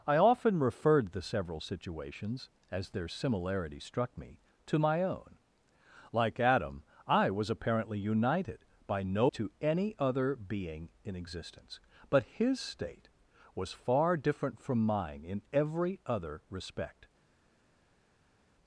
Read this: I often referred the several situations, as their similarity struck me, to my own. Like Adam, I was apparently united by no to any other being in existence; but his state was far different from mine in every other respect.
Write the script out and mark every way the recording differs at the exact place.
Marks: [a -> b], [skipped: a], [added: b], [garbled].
I often referred the several situations, as their similarity struck me, to my own. Like Adam, I was apparently united by no to any other being in existence; but his state was far different from mine in every other respect.